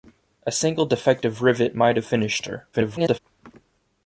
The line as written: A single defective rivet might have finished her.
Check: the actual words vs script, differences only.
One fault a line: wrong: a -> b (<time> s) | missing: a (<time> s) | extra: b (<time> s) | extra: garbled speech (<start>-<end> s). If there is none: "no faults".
extra: garbled speech (2.7-3.2 s)